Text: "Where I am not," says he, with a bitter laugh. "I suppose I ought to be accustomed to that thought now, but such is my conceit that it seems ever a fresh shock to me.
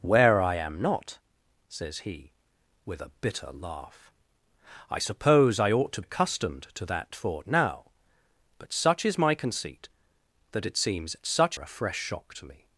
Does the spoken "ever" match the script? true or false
false